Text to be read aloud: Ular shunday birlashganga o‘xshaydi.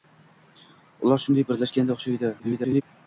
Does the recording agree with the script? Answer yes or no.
no